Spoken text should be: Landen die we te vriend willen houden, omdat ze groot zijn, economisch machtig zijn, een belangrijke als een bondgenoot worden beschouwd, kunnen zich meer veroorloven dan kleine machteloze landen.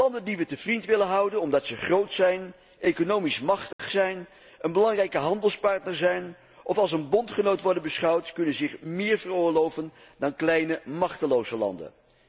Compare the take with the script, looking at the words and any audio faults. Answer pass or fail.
fail